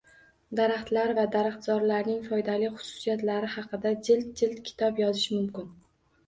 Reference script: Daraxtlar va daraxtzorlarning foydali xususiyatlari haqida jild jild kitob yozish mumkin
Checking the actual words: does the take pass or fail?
pass